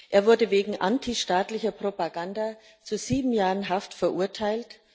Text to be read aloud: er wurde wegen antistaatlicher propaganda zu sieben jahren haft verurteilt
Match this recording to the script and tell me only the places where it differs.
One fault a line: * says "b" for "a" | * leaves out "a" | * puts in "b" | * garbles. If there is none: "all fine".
all fine